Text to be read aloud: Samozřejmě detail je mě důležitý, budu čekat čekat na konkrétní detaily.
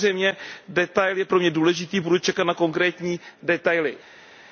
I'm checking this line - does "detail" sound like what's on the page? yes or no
yes